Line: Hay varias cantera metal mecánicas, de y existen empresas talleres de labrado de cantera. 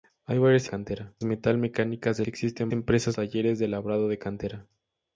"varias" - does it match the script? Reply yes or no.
yes